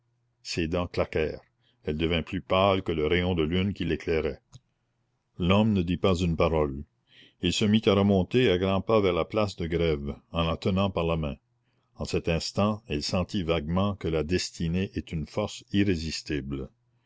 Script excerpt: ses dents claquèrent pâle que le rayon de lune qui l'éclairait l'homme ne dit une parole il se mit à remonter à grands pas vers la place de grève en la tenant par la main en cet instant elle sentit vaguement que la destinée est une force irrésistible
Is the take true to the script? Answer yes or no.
no